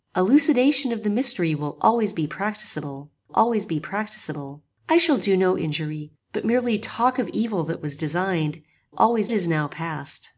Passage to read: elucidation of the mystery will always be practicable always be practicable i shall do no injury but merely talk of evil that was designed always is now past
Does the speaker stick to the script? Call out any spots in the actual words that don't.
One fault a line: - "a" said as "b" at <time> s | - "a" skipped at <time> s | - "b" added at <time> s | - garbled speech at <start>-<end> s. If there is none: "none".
none